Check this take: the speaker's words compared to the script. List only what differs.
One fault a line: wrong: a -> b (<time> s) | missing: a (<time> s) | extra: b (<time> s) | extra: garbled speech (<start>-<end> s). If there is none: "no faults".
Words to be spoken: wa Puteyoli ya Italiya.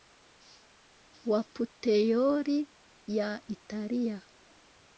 no faults